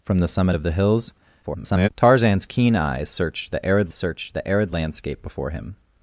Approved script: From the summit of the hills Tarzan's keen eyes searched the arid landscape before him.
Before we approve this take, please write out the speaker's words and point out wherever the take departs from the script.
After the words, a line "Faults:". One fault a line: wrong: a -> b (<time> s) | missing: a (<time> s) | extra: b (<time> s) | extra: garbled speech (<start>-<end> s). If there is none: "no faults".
From the summit of the hills [garbled] Tarzan's keen eyes searched the arid searched the arid landscape before him.
Faults:
extra: garbled speech (1.4-1.9 s)
extra: searched the arid (3.9 s)